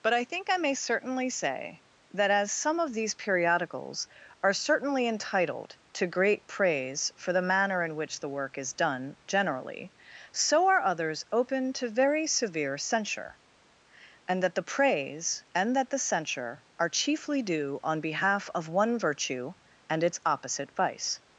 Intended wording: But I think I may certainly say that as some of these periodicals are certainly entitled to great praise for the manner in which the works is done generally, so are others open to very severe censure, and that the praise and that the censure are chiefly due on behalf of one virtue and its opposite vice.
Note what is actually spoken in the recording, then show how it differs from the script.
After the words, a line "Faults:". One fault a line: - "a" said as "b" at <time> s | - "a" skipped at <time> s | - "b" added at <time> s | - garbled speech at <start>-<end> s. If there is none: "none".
But I think I may certainly say that as some of these periodicals are certainly entitled to great praise for the manner in which the work is done generally, so are others open to very severe censure, and that the praise and that the censure are chiefly due on behalf of one virtue and its opposite vice.
Faults:
- "works" said as "work" at 8.3 s